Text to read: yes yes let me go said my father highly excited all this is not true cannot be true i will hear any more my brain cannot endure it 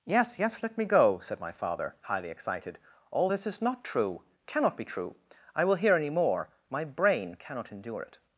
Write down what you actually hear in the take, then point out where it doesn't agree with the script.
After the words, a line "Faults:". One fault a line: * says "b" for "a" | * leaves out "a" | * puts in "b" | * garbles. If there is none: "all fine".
yes yes let me go said my father highly excited all this is not true cannot be true i will hear any more my brain cannot endure it
Faults:
all fine